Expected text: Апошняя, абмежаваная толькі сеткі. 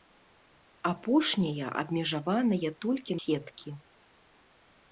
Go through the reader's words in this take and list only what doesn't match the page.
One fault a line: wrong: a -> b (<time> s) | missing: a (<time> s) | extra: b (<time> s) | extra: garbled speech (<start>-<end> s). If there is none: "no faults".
no faults